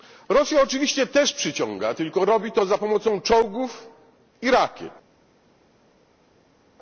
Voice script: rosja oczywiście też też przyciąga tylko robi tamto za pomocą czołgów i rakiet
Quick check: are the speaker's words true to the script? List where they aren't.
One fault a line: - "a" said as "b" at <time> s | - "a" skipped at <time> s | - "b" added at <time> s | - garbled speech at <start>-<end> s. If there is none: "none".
- "też" skipped at 1.3 s
- "tamto" said as "to" at 2.5 s